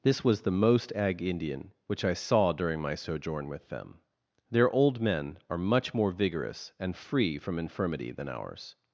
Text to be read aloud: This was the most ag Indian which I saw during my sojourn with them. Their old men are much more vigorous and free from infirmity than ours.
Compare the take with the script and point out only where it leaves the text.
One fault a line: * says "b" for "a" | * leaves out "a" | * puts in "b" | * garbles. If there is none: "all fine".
all fine